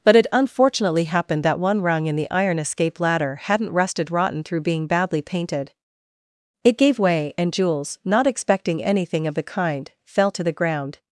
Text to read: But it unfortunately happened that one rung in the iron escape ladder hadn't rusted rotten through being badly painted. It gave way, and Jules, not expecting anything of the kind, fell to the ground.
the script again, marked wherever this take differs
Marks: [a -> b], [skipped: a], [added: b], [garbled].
But it unfortunately happened that one rung in the iron escape ladder hadn't rusted rotten through being badly painted. It gave way, and Jules, not expecting anything of the kind, fell to the ground.